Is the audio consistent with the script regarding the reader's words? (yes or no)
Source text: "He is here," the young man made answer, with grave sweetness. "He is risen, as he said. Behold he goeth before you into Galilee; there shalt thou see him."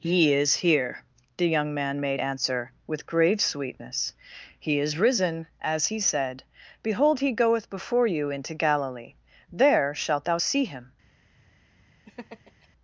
yes